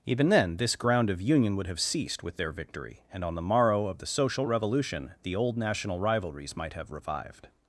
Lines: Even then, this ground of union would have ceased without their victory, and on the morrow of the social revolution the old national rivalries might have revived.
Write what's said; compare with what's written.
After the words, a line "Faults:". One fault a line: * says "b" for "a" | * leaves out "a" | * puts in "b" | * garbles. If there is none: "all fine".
Even then, this ground of union would have ceased with their victory, and on the morrow of the social revolution the old national rivalries might have revived.
Faults:
* says "with" for "without"